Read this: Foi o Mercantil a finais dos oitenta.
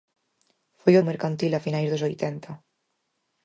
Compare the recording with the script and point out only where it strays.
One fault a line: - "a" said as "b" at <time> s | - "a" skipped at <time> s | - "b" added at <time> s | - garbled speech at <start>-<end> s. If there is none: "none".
none